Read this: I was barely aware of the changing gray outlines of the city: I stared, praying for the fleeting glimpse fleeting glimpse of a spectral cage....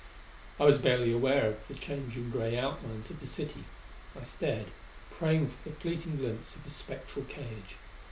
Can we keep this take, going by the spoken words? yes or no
no